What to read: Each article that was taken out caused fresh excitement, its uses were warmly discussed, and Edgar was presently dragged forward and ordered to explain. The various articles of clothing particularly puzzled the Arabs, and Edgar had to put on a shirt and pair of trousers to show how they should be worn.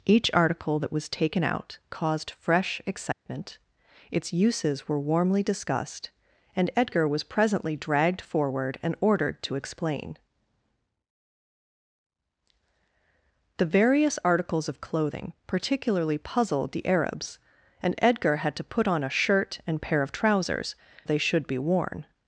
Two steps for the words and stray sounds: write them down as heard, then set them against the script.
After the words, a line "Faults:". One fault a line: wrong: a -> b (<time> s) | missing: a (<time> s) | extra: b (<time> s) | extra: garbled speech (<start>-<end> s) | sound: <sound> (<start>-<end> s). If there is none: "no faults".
Each article that was taken out caused fresh excitement, its uses were warmly discussed, and Edgar was presently dragged forward and ordered to explain. The various articles of clothing particularly puzzled the Arabs, and Edgar had to put on a shirt and pair of trousers they should be worn.
Faults:
sound: dropout (3.1-3.3 s)
missing: to show how (20.8 s)